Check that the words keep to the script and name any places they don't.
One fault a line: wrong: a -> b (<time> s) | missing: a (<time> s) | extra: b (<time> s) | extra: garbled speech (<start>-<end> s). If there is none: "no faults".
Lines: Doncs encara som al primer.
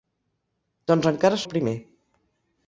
missing: som (1.4 s)